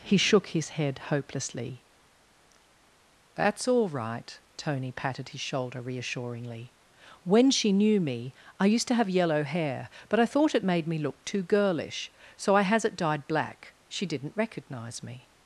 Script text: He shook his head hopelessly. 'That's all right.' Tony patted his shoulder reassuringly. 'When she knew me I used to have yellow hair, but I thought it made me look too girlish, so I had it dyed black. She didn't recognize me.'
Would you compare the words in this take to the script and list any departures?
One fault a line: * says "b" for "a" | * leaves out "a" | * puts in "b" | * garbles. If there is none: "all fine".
* says "has" for "had"